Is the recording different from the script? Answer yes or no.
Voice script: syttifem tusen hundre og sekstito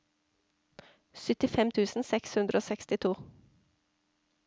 yes